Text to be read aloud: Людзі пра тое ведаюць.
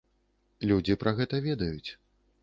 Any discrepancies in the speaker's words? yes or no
yes